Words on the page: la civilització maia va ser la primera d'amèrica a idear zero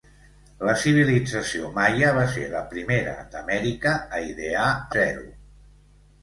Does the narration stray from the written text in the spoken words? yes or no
no